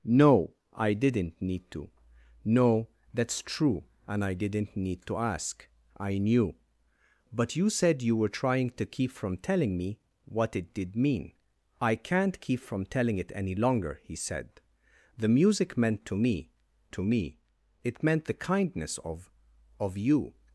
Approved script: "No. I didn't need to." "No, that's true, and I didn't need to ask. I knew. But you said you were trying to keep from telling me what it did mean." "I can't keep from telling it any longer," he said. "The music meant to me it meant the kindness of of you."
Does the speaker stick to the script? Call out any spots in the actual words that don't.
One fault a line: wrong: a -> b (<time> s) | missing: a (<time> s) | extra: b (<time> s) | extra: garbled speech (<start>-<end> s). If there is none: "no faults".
extra: to me (16.9 s)